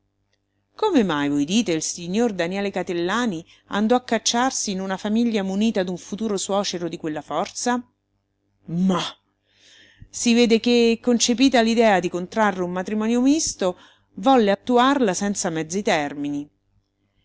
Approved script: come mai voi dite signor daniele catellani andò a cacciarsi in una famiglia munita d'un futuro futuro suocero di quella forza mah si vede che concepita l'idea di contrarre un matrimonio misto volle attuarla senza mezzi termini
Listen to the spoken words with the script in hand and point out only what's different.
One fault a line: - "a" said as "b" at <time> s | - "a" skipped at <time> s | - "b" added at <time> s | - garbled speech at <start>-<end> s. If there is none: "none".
- "il" added at 1.7 s
- "futuro" skipped at 6.4 s